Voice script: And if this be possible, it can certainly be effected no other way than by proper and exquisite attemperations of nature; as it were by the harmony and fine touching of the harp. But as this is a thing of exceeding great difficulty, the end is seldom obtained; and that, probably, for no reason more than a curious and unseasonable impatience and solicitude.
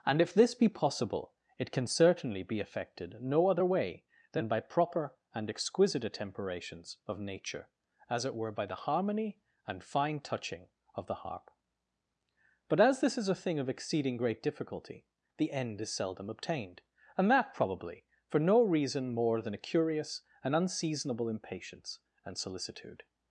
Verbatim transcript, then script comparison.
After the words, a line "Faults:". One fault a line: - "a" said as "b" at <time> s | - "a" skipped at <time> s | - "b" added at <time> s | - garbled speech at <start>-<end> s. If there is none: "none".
And if this be possible, it can certainly be effected no other way than by proper and exquisite attemperations of nature; as it were by the harmony and fine touching of the harp. But as this is a thing of exceeding great difficulty, the end is seldom obtained; and that, probably, for no reason more than a curious and unseasonable impatience and solicitude.
Faults:
none